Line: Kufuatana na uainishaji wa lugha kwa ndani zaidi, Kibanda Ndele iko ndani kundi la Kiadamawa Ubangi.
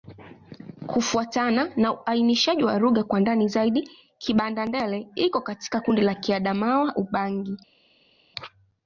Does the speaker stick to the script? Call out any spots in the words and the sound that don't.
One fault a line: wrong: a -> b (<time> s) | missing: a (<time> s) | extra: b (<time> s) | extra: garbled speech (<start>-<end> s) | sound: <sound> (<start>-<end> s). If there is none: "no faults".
wrong: ndani -> katika (5.4 s)